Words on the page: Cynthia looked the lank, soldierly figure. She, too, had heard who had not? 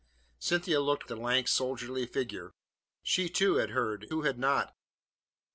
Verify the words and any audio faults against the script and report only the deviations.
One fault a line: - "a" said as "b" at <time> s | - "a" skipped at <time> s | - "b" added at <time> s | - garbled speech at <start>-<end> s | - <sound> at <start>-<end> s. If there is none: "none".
none